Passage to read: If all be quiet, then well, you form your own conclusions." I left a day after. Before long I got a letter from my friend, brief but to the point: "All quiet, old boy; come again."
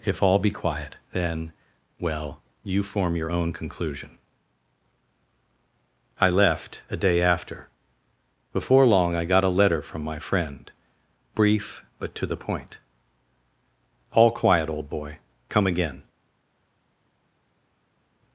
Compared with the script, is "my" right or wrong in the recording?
right